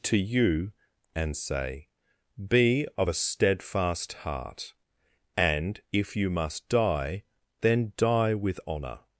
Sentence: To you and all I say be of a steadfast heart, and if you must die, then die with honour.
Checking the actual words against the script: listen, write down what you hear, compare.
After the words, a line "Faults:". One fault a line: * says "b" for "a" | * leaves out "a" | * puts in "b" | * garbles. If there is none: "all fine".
To you and say be of a steadfast heart, and if you must die, then die with honour.
Faults:
* leaves out "all I"